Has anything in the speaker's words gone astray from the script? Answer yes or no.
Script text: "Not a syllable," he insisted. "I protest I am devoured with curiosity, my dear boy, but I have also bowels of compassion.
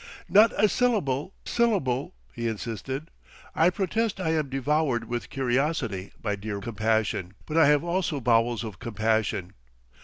yes